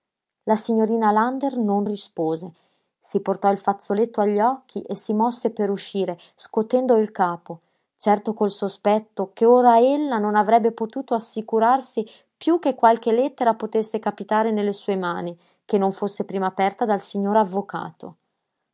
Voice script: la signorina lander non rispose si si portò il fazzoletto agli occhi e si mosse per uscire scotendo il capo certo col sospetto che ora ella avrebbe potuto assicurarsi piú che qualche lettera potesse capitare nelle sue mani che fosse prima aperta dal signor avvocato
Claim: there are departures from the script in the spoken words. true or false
true